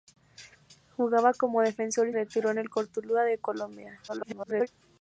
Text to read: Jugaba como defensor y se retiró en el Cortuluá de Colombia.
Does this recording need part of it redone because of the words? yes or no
yes